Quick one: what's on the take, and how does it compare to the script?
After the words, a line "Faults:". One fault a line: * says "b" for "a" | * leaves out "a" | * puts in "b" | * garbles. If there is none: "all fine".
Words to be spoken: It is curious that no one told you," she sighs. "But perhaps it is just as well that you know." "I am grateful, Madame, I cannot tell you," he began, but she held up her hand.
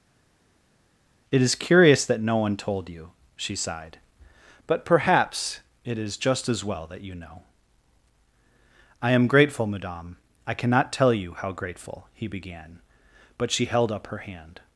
It is curious that no one told you," she sighed. "But perhaps it is just as well that you know." "I am grateful, Madame, I cannot tell you how grateful," he began, but she held up her hand.
Faults:
* says "sighed" for "sighs"
* puts in "how grateful"